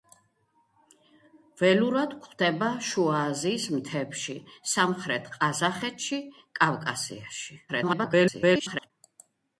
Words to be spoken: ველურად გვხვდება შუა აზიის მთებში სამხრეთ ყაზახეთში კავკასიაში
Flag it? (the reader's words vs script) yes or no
yes